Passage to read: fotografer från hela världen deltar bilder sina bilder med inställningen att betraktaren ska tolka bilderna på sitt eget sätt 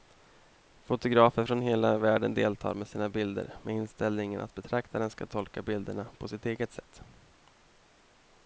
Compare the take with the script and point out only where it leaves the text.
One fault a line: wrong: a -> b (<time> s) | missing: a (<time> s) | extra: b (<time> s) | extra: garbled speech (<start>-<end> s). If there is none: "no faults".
wrong: bilder -> med (2.7 s)